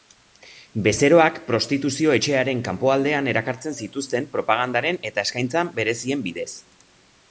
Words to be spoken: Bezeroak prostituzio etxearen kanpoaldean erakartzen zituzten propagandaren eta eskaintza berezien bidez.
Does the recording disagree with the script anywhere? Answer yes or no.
no